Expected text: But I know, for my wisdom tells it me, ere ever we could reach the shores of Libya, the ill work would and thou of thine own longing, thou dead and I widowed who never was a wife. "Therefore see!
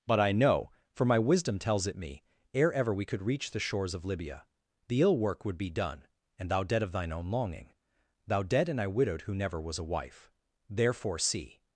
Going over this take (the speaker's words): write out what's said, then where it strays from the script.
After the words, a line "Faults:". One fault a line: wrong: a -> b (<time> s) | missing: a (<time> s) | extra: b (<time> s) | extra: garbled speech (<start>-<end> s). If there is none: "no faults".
But I know, for my wisdom tells it me, ere ever we could reach the shores of Libya, the ill work would be done, and thou dead of thine own longing, thou dead and I widowed who never was a wife. "Therefore see!
Faults:
extra: be done (5.6 s)
extra: dead (6.6 s)